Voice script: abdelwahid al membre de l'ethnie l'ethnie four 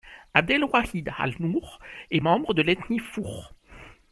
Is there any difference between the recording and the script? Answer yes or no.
yes